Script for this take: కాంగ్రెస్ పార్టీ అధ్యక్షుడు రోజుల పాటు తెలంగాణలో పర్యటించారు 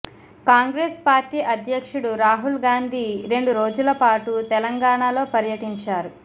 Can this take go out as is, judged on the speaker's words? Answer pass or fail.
fail